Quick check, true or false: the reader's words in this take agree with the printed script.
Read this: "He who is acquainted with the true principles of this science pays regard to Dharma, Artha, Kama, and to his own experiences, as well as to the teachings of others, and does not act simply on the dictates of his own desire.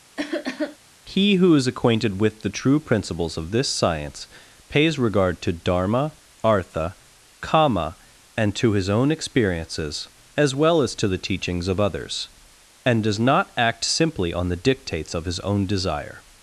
true